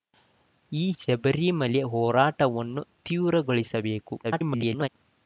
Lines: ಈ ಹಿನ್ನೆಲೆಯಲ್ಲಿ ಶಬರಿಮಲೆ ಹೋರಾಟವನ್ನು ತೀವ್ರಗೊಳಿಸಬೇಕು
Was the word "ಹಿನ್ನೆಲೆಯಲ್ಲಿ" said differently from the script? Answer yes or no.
yes